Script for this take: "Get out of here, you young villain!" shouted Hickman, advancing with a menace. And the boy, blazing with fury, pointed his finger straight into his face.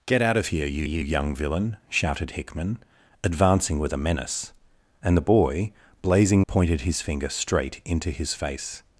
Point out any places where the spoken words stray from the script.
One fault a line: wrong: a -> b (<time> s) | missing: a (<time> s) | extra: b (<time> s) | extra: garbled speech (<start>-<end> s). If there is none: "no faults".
extra: you (0.8 s)
missing: with fury (6.4 s)